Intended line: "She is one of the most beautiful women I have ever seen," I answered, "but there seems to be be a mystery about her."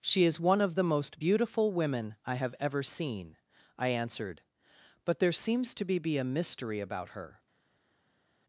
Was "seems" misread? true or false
false